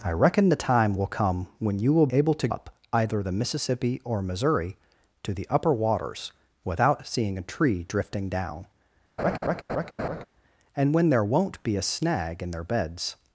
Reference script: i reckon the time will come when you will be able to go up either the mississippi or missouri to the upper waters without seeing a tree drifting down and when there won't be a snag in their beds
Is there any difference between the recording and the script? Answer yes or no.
yes